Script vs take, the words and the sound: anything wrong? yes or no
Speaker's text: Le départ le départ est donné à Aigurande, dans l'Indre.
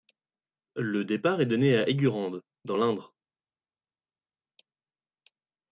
yes